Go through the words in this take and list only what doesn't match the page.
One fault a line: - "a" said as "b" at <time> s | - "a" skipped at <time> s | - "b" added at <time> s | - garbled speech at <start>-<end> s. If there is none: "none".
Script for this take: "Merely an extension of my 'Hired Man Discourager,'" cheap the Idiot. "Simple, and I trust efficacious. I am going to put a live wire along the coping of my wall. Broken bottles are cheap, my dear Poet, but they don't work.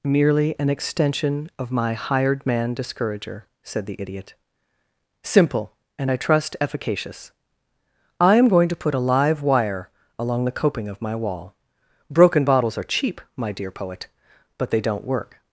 - "cheap" said as "said" at 3.6 s